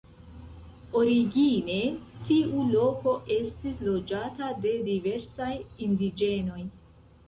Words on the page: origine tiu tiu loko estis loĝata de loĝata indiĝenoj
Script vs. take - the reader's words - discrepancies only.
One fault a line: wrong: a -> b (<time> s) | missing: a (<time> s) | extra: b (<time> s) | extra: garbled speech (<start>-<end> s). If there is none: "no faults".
missing: tiu (2.6 s)
wrong: loĝata -> diversaj (4.9 s)